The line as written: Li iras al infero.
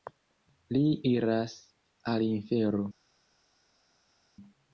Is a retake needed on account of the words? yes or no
no